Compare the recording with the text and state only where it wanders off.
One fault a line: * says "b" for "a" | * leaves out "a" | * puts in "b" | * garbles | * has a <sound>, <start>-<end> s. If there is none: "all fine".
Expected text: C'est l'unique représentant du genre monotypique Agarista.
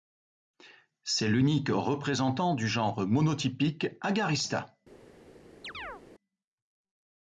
* has a chirp, 5.6-6.0 s